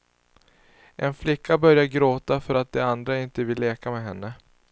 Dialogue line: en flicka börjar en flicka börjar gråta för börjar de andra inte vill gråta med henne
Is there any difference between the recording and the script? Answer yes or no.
yes